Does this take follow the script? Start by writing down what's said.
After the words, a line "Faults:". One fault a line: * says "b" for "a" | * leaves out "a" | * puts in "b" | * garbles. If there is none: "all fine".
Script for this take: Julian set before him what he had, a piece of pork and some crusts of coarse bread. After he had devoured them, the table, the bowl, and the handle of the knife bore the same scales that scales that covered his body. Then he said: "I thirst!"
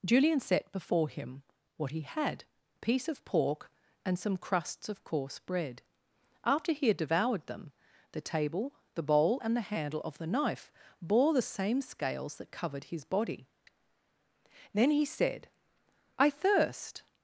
Julian set before him what he had, a piece of pork and some crusts of coarse bread. After he had devoured them, the table, the bowl, and the handle of the knife bore the same scales that covered his body. Then he said: "I thirst!"
Faults:
* leaves out "scales that"